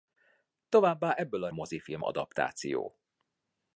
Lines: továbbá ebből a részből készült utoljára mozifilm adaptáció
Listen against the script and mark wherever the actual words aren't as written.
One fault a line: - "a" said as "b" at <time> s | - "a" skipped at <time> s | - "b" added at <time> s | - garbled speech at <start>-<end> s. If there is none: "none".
- "részből készült utoljára" skipped at 1.5 s